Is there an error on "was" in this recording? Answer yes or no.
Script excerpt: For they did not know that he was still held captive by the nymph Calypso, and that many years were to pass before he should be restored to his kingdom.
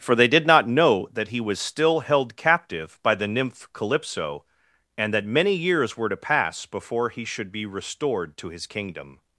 no